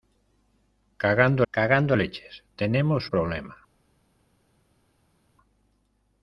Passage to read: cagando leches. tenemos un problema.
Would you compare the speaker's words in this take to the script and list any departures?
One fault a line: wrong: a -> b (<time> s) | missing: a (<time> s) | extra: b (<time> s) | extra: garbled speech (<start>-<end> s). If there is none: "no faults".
extra: cagando (1.5 s)
missing: un (3.1 s)